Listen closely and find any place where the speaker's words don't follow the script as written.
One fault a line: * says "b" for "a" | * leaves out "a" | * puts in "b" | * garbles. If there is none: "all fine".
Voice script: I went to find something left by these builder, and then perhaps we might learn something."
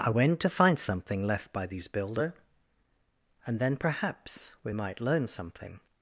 all fine